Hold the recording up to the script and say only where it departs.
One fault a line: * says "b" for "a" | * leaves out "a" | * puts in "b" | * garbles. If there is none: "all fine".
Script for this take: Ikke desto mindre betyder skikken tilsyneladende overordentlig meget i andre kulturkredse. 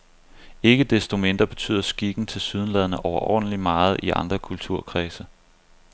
all fine